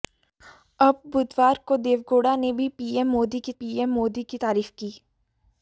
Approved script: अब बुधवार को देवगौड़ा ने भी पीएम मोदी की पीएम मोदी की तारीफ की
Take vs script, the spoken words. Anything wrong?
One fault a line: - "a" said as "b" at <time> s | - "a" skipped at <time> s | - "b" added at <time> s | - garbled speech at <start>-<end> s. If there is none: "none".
none